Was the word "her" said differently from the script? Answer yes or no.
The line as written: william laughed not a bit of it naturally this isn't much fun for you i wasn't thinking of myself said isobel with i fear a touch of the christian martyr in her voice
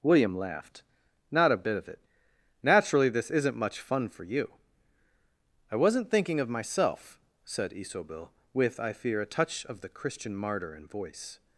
yes